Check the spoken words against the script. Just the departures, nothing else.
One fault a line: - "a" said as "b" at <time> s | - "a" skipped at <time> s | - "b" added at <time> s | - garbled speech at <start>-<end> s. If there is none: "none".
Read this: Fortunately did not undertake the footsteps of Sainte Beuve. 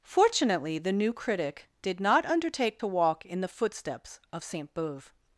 - "the new critic" added at 0.8 s
- "to walk in" added at 2.8 s